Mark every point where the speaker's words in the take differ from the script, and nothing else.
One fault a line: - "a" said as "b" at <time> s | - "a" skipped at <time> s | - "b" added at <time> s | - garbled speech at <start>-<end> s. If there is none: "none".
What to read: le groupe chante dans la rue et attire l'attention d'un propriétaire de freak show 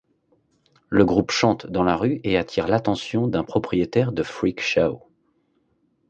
none